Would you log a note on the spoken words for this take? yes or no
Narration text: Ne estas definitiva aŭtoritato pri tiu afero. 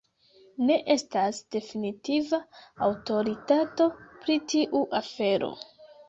no